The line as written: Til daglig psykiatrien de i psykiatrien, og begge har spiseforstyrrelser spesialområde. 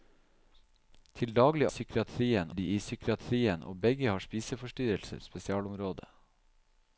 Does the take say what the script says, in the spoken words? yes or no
yes